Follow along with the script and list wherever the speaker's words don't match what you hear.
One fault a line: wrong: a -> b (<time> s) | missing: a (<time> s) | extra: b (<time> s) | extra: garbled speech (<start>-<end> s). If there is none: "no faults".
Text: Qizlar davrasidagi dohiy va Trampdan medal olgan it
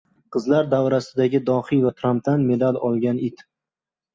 no faults